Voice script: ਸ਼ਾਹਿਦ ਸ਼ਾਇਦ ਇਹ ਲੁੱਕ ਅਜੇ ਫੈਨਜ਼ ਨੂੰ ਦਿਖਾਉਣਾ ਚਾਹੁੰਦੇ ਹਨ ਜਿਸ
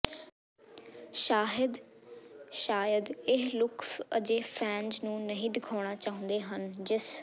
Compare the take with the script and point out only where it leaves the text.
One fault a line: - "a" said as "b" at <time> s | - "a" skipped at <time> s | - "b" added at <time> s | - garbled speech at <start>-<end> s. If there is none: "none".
- "ਨਹੀਂ" added at 5.2 s